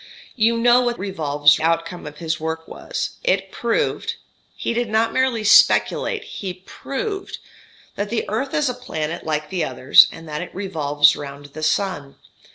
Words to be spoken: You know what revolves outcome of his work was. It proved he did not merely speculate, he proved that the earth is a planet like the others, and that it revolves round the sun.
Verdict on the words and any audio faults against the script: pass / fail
pass